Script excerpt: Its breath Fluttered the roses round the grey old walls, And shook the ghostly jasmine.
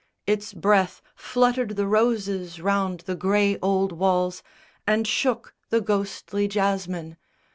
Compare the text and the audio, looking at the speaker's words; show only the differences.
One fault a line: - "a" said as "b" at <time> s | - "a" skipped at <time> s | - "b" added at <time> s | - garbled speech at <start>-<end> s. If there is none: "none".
none